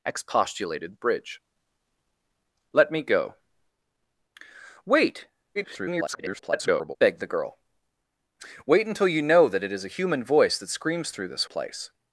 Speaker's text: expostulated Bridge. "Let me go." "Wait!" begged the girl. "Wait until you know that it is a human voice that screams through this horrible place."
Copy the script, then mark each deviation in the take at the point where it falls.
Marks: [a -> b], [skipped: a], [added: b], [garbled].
expostulated Bridge. "Let me go." "Wait!" [garbled] begged the girl. "Wait until you know that it is a human voice that screams through this [skipped: horrible] place."